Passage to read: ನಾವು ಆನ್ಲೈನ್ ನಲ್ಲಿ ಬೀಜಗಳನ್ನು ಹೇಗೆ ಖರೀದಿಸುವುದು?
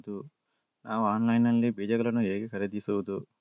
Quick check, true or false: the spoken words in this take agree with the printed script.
true